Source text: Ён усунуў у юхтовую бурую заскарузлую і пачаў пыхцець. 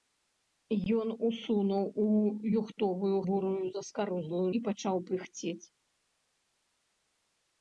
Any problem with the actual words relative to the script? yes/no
no